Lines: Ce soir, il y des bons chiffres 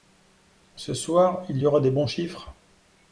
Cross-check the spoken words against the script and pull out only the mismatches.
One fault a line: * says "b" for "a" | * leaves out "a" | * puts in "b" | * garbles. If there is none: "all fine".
* puts in "aura"